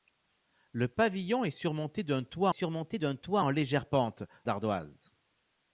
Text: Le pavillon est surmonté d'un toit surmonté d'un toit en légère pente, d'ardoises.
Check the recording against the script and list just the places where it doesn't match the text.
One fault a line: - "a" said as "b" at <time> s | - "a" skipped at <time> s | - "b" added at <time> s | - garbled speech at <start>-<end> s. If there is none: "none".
none